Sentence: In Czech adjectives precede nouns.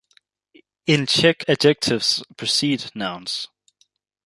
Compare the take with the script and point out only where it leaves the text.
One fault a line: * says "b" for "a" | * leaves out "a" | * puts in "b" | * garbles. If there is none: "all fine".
all fine